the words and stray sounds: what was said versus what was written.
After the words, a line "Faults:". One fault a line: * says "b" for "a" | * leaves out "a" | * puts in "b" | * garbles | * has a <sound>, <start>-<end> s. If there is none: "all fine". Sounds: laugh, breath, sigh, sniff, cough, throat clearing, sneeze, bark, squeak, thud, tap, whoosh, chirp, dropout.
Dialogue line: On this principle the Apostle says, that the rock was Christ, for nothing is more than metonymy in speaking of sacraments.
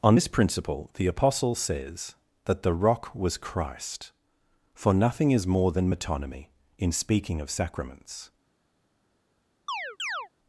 On this principle the Apostle says, that the rock was Christ, for nothing is more than metonymy in speaking of sacraments.
Faults:
* has a chirp, 9.7-10.3 s